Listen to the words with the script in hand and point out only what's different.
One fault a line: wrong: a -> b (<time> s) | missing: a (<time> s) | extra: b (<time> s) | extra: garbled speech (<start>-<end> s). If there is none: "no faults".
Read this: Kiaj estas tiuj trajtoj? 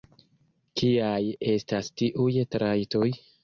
no faults